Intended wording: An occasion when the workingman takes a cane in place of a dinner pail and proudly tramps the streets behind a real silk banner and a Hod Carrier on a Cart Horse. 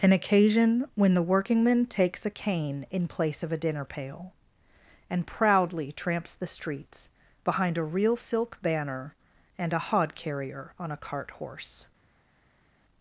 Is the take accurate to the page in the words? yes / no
yes